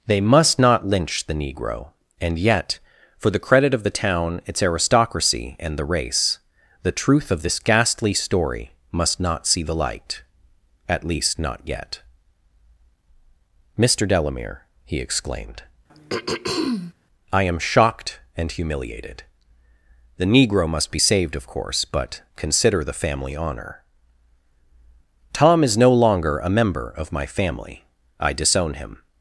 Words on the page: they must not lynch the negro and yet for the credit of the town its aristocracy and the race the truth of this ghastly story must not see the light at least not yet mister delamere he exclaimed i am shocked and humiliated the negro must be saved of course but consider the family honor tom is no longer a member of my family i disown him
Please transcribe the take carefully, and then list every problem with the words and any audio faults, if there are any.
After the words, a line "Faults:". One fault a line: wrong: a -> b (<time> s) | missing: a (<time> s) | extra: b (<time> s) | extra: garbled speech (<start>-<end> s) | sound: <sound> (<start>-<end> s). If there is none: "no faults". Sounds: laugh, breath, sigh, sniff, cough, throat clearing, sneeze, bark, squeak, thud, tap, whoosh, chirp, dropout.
they must not lynch the negro and yet for the credit of the town its aristocracy and the race the truth of this ghastly story must not see the light at least not yet mister delamere he exclaimed i am shocked and humiliated the negro must be saved of course but consider the family honor tom is no longer a member of my family i disown him
Faults:
sound: throat clearing (15.9-16.9 s)